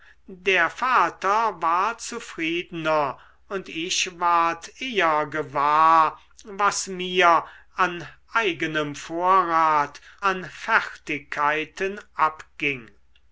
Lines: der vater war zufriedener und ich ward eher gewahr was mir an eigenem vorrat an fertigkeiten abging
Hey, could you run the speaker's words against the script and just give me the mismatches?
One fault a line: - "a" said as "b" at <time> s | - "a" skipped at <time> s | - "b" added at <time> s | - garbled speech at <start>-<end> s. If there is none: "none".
none